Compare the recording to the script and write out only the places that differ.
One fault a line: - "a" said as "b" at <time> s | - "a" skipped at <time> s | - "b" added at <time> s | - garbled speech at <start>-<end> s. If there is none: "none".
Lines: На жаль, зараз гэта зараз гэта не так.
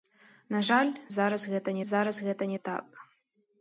none